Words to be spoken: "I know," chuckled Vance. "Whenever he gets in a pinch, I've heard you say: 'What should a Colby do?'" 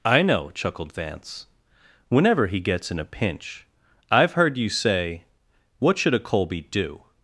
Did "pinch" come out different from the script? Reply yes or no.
no